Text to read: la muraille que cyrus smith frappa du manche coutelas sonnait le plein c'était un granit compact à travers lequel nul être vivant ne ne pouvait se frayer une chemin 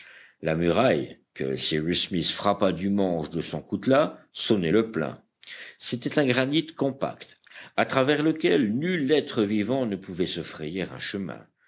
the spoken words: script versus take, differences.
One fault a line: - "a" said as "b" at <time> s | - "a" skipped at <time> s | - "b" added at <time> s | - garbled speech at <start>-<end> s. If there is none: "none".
- "de son" added at 3.3 s
- "ne" skipped at 10.0 s
- "une" said as "un" at 10.8 s